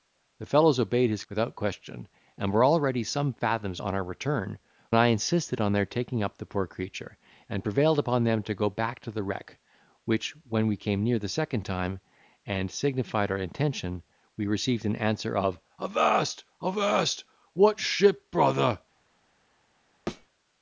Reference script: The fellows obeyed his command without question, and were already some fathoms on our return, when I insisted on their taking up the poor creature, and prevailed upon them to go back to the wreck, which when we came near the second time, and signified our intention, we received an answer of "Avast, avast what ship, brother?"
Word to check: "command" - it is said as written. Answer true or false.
false